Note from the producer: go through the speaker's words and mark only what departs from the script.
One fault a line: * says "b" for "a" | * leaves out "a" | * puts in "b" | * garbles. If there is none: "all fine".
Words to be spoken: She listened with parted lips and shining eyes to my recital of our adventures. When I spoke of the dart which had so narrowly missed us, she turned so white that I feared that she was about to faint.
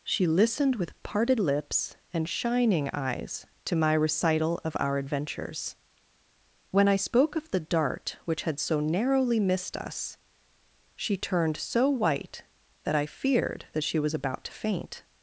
all fine